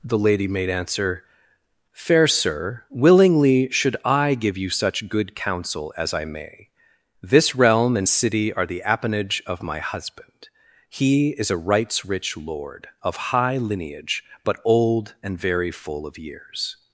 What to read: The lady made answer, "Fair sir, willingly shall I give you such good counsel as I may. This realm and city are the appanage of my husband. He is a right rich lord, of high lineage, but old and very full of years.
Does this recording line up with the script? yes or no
no